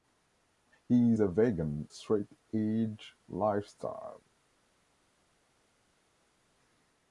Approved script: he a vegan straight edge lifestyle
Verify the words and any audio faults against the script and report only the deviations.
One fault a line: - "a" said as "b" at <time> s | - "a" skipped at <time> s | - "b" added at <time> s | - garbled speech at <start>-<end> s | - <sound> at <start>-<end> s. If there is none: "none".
none